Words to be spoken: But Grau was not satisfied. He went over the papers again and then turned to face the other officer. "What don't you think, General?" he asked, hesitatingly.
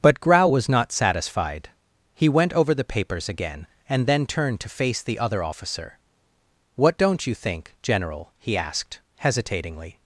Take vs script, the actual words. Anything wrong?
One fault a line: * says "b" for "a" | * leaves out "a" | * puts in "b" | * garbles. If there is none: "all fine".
all fine